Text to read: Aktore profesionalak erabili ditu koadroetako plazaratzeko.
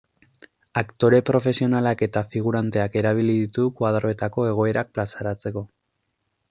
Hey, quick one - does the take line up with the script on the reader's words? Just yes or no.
no